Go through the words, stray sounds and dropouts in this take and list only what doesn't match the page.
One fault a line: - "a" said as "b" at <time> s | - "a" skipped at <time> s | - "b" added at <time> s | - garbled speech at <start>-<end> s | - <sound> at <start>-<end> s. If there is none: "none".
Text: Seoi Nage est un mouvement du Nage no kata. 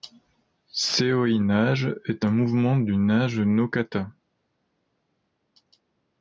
none